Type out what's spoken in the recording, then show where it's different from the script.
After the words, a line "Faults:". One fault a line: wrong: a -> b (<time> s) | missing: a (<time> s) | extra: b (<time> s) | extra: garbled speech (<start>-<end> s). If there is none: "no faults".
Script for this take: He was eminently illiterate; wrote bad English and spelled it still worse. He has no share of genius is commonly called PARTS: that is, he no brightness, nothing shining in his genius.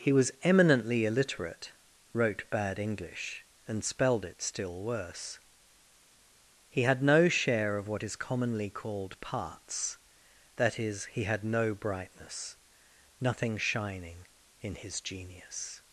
He was eminently illiterate; wrote bad English and spelled it still worse. He had no share of what is commonly called PARTS: that is, he had no brightness, nothing shining in his genius.
Faults:
wrong: has -> had (6.8 s)
wrong: genius -> what (7.9 s)
extra: had (11.2 s)